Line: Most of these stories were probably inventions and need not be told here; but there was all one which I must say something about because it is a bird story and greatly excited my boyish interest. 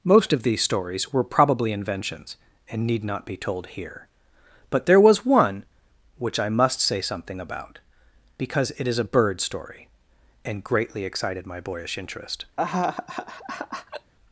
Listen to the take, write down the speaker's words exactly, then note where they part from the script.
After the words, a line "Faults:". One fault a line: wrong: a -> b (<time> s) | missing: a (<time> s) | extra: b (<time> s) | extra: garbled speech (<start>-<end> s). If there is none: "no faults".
Most of these stories were probably inventions and need not be told here; but there was one which I must say something about because it is a bird story and greatly excited my boyish interest.
Faults:
missing: all (5.2 s)